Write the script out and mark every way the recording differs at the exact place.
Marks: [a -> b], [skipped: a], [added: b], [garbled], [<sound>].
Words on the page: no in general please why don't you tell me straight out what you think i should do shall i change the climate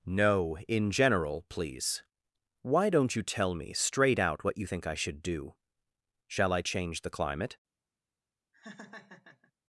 no in general please why don't you tell me straight out what you think i should do shall i change the climate [laugh]